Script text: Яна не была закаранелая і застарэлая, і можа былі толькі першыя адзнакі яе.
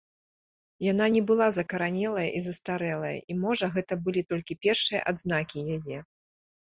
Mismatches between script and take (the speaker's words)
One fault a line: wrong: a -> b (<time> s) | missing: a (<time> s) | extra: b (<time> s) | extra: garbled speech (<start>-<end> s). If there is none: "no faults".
extra: гэта (3.8 s)